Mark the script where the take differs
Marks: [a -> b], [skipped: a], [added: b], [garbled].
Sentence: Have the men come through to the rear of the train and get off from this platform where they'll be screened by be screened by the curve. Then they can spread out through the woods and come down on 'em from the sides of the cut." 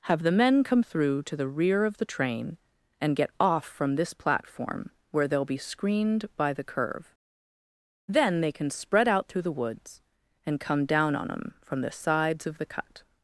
Have the men come through to the rear of the train and get off from this platform where they'll be screened by [skipped: be screened by] the curve. Then they can spread out through the woods and come down on 'em from the sides of the cut."